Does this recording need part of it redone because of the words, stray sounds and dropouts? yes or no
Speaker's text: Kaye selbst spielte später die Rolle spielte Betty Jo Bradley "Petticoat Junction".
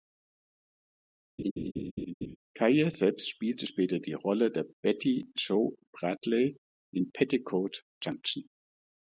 yes